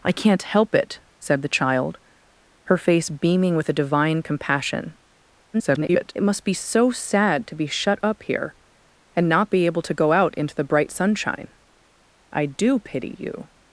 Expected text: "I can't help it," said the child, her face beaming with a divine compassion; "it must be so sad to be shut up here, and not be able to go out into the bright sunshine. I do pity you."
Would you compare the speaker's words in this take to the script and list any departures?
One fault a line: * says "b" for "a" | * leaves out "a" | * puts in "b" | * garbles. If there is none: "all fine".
* garbles